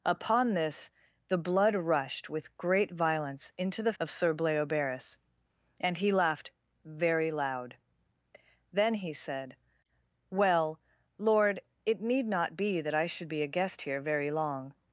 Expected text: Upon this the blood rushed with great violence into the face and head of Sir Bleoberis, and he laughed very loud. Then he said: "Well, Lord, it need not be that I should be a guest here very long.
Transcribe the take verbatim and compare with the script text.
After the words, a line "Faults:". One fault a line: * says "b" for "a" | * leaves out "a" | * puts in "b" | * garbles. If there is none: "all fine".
Upon this the blood rushed with great violence into the of Sir Bleoberis, and he laughed very loud. Then he said: "Well, Lord, it need not be that I should be a guest here very long.
Faults:
* leaves out "face and head"